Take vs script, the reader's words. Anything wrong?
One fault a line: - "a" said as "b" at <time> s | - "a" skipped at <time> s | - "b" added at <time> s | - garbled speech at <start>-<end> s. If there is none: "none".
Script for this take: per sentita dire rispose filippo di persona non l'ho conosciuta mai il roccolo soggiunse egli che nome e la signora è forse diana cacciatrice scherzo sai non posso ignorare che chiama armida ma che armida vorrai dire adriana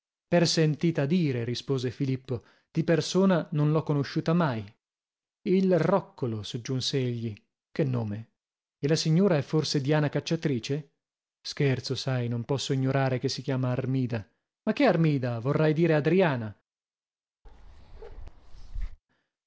- "si" added at 13.3 s